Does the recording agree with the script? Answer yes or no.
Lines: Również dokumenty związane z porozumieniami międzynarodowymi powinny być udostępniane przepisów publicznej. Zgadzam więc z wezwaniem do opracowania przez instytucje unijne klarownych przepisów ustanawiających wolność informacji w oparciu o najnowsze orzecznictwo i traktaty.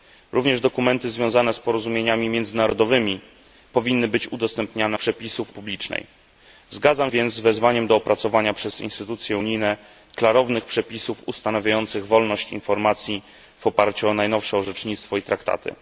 yes